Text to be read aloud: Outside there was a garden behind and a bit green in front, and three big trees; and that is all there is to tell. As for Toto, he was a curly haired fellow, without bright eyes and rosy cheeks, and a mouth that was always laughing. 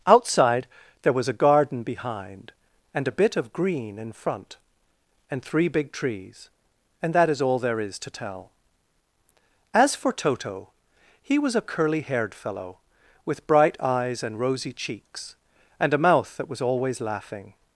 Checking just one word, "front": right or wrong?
right